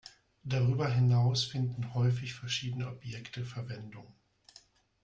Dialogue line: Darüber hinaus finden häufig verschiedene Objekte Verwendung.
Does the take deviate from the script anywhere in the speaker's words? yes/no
no